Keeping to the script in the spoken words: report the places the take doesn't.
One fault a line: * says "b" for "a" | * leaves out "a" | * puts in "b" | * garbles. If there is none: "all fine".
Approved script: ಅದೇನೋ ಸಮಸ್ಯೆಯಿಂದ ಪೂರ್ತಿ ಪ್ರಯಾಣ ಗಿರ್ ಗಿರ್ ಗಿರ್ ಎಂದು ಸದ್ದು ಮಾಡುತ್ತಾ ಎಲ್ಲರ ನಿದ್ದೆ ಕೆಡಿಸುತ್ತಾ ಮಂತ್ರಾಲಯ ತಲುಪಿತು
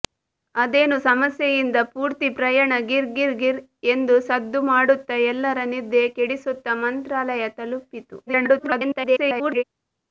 * garbles